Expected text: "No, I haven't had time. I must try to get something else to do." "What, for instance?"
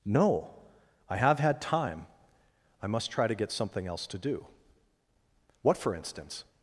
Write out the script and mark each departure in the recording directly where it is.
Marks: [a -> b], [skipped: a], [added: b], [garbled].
"No, I [haven't -> have] had time. I must try to get something else to do." "What, for instance?"